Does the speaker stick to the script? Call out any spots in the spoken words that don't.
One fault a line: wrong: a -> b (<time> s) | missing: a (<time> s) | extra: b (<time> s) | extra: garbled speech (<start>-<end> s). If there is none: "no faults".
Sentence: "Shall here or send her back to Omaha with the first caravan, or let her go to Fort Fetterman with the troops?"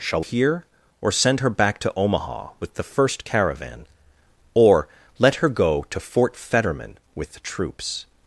no faults